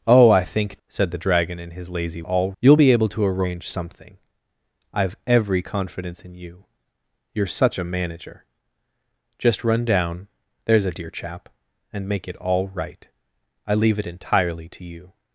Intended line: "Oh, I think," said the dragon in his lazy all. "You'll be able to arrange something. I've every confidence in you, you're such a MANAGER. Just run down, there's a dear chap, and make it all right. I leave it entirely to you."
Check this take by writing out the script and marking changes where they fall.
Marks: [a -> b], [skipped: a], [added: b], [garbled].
"Oh, I think," said the dragon in his lazy all. "You'll be able to arrange something. I've every confidence in you, you're such a MANAGER. Just run down, there's a dear chap, and make it all right. I leave it entirely to you."